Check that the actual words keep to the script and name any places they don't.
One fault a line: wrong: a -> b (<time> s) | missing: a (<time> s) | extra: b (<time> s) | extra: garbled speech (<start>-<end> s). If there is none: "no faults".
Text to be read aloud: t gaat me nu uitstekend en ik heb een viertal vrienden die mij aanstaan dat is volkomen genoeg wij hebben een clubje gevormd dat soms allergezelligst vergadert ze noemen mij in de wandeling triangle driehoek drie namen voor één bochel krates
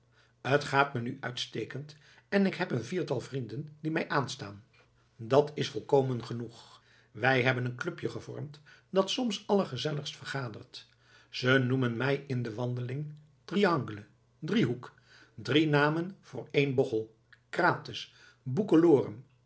no faults